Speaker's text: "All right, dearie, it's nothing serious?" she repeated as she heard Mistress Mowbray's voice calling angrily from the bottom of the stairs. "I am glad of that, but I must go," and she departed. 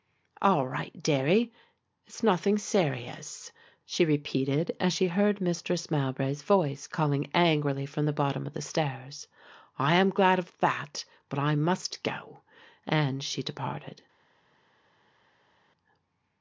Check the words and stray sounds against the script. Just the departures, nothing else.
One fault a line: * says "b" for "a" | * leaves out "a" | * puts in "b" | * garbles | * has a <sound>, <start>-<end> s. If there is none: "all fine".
all fine